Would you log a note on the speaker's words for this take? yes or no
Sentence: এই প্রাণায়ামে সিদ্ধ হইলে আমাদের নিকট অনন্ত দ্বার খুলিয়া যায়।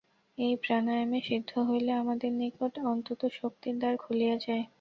yes